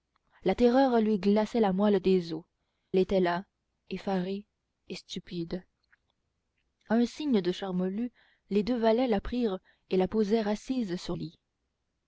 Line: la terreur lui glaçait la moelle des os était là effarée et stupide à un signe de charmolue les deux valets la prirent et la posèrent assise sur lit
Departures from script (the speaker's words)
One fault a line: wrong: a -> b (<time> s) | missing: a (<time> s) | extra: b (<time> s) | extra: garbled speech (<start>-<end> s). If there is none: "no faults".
no faults